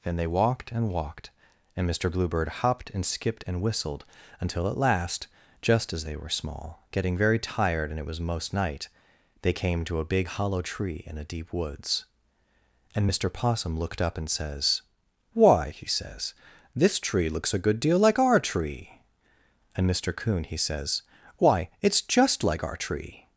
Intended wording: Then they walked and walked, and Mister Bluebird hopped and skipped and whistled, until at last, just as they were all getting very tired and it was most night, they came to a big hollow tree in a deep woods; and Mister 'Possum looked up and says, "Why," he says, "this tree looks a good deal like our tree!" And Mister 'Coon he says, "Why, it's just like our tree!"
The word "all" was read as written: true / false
false